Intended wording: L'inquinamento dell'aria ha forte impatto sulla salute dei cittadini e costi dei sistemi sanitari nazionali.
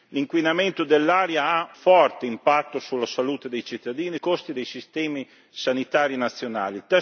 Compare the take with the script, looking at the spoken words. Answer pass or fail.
pass